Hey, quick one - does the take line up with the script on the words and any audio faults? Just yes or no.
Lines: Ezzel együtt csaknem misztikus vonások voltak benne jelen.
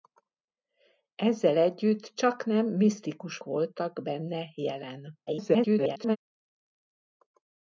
no